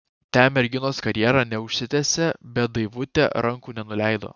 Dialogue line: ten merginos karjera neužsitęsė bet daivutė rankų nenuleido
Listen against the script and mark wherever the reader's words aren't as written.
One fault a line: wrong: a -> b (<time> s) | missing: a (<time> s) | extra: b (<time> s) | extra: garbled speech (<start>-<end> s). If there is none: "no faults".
no faults